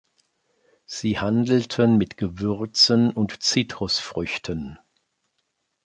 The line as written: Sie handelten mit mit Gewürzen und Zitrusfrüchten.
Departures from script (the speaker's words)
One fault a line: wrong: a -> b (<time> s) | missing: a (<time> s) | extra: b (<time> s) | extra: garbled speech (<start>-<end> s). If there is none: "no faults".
missing: mit (2.2 s)